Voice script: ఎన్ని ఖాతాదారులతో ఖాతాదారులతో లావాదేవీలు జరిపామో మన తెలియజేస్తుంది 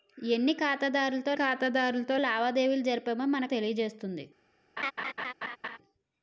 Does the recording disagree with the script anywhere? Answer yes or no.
no